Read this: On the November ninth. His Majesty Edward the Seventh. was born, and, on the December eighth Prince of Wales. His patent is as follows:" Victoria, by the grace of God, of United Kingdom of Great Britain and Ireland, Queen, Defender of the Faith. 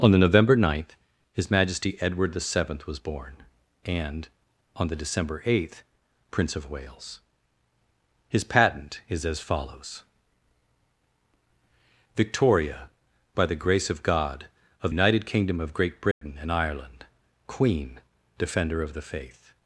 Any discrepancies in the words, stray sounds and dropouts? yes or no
yes